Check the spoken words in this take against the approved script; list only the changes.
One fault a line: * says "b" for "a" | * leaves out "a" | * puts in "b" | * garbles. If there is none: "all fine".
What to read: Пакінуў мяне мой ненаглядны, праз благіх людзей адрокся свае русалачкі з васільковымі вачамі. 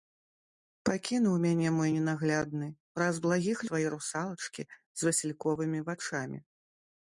* leaves out "людзей адрокся"